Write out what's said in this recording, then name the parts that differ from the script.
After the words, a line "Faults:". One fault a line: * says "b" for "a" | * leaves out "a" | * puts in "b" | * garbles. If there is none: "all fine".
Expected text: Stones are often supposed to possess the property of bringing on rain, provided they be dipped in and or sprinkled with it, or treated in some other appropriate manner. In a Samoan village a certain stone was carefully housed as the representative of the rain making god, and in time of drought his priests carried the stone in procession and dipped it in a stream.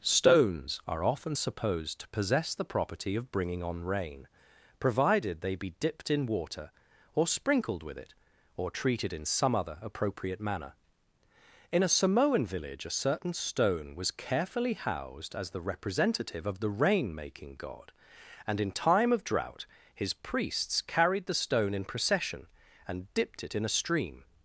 Stones are often supposed to possess the property of bringing on rain, provided they be dipped in water or sprinkled with it, or treated in some other appropriate manner. In a Samoan village a certain stone was carefully housed as the representative of the rain making god, and in time of drought his priests carried the stone in procession and dipped it in a stream.
Faults:
* says "water" for "and"